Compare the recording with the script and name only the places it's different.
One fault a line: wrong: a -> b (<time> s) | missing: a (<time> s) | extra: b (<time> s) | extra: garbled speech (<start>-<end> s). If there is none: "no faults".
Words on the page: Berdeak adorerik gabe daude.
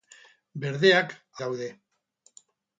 missing: adorerik gabe (1.1 s)